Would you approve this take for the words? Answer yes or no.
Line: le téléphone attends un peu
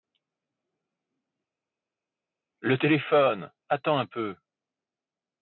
yes